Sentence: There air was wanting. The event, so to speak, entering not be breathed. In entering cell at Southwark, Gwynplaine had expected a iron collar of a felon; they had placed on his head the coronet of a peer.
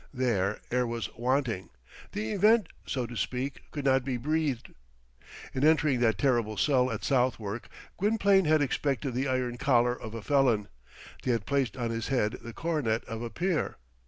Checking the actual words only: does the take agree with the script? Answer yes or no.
no